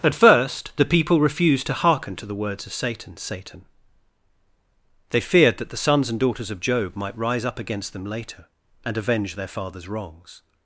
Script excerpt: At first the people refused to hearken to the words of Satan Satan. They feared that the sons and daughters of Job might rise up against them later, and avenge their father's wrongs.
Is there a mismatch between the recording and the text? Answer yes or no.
no